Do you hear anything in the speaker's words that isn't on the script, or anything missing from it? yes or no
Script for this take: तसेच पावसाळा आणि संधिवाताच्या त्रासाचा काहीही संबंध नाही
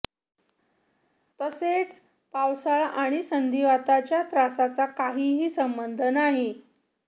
no